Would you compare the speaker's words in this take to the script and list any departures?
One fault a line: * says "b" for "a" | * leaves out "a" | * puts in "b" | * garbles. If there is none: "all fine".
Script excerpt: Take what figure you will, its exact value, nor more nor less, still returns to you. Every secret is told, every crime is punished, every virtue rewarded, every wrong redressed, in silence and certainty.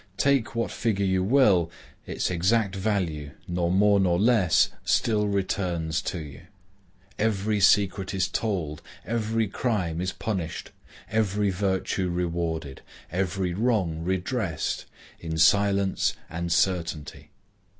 all fine